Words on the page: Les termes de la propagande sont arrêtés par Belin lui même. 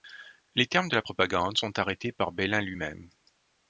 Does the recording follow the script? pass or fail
pass